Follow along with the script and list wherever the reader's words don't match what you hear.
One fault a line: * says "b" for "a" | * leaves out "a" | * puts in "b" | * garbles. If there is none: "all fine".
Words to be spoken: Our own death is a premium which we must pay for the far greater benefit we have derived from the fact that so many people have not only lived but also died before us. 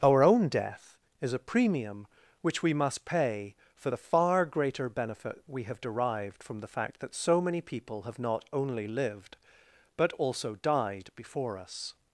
all fine